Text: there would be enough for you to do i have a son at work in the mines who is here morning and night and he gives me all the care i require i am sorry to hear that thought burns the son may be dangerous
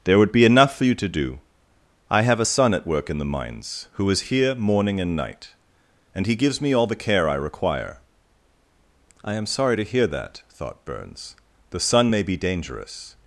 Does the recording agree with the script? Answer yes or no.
yes